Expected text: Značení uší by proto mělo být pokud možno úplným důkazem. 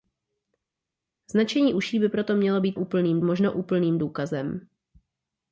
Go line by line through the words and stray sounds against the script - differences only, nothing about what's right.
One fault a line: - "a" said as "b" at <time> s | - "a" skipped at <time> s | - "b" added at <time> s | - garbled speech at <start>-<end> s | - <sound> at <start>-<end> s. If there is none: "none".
- "pokud" said as "úplným" at 2.8 s